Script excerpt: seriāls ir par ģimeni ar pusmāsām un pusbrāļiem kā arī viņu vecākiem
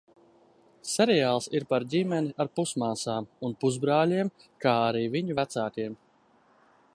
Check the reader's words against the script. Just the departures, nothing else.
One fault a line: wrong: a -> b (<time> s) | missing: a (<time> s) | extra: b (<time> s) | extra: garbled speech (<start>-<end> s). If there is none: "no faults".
no faults